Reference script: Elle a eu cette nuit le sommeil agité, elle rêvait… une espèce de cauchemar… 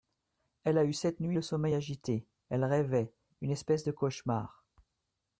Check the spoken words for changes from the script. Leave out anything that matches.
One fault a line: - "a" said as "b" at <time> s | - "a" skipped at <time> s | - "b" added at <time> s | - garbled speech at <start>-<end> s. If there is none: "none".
none